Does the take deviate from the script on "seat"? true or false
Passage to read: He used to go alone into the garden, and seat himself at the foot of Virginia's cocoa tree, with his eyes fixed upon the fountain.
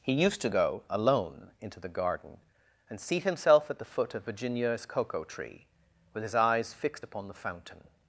false